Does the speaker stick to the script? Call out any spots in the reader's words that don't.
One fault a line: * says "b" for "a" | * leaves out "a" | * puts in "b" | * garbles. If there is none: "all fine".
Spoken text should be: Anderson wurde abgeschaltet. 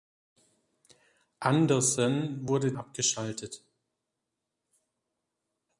all fine